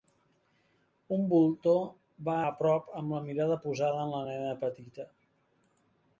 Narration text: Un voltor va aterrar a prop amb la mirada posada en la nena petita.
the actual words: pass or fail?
fail